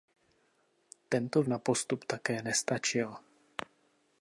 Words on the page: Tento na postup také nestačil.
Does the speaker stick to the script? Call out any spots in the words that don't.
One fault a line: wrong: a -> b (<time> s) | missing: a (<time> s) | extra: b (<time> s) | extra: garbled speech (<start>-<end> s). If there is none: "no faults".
no faults